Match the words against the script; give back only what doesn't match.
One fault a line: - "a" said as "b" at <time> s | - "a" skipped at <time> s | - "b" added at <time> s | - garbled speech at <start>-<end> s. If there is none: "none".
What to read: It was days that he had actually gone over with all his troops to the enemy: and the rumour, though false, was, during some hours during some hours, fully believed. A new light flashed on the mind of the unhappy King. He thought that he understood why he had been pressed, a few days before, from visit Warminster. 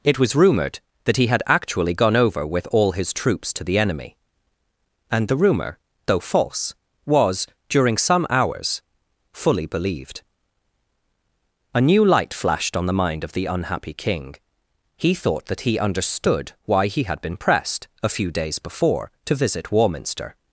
- "days" said as "rumoured" at 0.3 s
- "during some hours" skipped at 8.8 s
- "from" said as "to" at 19.2 s